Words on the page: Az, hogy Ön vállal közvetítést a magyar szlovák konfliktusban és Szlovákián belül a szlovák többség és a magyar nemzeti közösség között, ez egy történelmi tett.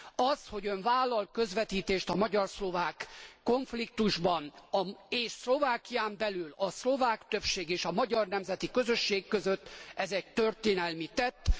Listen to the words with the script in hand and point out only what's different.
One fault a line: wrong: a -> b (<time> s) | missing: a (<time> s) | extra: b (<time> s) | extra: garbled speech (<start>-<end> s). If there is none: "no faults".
no faults